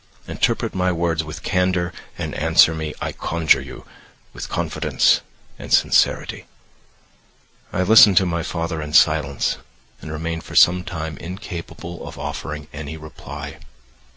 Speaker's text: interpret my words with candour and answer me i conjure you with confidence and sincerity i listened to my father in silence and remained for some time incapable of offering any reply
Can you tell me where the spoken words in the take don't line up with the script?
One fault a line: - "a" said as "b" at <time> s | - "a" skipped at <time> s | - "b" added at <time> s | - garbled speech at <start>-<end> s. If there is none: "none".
none